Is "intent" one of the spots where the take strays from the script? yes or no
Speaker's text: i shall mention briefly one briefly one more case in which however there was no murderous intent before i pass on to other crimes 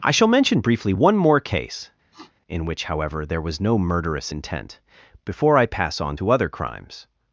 no